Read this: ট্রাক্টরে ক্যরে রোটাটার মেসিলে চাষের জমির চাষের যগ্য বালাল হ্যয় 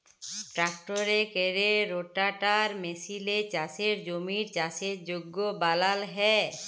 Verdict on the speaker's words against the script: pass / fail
pass